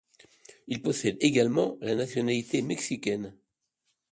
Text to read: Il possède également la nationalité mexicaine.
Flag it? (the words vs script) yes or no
no